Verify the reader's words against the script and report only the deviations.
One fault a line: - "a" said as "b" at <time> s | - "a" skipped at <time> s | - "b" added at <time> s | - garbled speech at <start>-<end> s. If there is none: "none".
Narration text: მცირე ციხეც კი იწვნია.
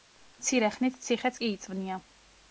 - "ხნით" added at 0.8 s